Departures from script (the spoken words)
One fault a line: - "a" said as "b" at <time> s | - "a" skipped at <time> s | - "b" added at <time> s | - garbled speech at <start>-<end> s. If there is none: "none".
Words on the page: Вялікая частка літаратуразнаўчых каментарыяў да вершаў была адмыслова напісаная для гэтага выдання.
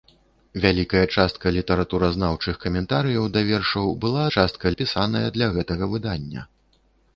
- "адмыслова" said as "частка" at 4.4 s